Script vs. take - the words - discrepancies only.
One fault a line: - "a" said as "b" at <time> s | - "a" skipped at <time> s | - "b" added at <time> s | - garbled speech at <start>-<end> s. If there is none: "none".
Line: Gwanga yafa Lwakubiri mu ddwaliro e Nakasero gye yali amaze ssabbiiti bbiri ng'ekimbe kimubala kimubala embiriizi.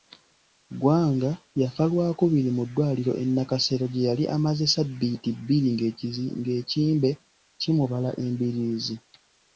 - "kimubala" skipped at 8.1 s